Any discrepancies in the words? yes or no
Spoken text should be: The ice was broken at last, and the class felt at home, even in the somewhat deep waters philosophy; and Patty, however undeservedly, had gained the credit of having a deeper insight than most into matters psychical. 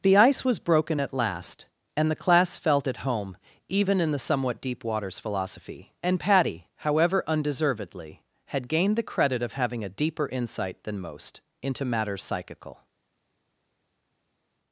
no